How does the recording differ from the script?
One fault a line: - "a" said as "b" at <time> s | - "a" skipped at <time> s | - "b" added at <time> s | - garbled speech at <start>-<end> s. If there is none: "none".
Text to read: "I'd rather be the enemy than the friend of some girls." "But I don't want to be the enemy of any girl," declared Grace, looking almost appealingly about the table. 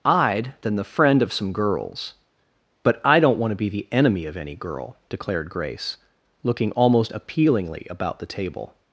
- "rather be the enemy" skipped at 0.6 s